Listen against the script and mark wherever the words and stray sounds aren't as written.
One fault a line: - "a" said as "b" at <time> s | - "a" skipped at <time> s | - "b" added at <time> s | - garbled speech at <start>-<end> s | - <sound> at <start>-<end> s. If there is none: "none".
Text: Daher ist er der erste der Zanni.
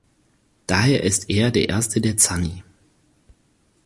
none